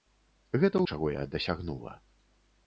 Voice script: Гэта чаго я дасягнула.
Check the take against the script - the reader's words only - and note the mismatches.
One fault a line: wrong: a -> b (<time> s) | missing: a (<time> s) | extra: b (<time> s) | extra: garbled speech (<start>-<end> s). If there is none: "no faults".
no faults